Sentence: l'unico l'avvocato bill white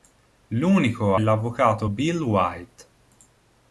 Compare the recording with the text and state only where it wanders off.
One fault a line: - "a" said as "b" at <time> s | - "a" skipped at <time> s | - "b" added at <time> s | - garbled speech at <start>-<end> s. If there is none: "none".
none